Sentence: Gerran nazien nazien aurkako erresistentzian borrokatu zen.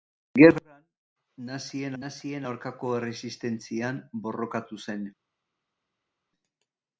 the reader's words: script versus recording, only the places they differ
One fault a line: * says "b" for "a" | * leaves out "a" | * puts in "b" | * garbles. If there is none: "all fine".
all fine